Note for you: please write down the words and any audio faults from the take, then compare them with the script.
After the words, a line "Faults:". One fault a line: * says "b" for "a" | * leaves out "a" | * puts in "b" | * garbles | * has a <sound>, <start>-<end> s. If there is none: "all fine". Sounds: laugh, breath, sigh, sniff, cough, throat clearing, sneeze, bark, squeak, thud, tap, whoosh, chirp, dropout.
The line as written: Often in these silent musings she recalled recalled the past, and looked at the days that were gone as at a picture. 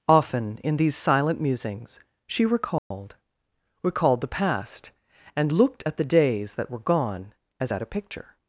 Often in these silent musings she recalled recalled the past, and looked at the days that were gone as at a picture.
Faults:
* has a dropout, 2.8-2.9 s